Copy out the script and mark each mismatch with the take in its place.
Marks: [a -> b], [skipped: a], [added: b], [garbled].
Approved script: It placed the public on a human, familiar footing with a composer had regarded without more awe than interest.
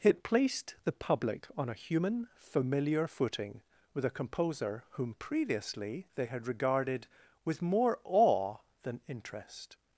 It placed the public on a human, familiar footing with a composer [added: whom previously they] had regarded [without -> with] more awe than interest.